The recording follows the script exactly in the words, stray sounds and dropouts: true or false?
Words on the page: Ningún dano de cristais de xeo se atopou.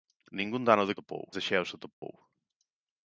false